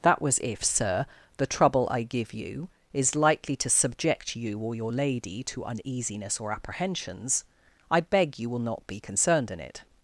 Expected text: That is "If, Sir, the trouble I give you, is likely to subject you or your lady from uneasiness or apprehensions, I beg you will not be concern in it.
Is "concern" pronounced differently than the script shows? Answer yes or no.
yes